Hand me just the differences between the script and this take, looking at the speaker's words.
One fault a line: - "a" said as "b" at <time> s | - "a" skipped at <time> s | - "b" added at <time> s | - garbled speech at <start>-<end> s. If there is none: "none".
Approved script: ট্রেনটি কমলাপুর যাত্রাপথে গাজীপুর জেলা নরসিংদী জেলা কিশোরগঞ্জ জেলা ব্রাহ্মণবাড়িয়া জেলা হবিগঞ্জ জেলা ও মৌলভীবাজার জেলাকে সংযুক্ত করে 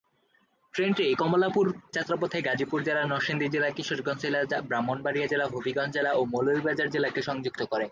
none